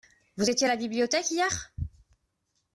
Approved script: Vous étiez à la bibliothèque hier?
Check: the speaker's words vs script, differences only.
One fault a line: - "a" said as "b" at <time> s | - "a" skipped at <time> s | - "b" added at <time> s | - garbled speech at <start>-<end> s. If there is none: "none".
none